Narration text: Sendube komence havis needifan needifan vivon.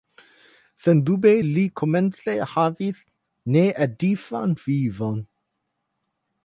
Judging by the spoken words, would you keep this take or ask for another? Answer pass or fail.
fail